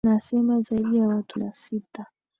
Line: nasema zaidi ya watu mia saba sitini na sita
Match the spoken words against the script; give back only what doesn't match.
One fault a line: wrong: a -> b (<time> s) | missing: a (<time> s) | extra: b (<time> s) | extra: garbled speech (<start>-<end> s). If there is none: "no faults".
missing: mia saba sitini (1.4 s)